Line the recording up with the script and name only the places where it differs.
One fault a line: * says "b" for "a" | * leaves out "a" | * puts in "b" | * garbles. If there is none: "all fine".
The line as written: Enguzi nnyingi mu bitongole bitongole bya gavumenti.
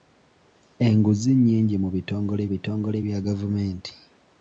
all fine